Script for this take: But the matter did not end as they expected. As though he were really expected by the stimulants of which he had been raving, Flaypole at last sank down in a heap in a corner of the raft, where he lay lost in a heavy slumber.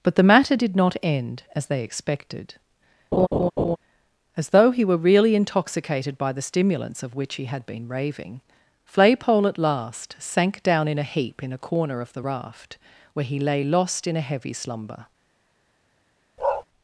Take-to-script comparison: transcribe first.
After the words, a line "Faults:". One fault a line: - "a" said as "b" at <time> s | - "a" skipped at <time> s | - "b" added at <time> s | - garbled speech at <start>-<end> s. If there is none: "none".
But the matter did not end as they expected. As though he were really intoxicated by the stimulants of which he had been raving, Flaypole at last sank down in a heap in a corner of the raft, where he lay lost in a heavy slumber.
Faults:
- "expected" said as "intoxicated" at 5.4 s